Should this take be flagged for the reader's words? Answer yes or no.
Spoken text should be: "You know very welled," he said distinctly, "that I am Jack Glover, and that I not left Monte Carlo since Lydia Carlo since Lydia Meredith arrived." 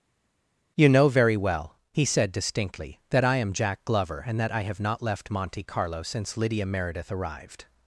yes